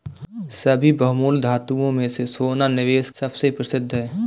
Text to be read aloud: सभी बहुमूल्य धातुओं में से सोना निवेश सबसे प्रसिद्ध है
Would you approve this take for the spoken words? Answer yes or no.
yes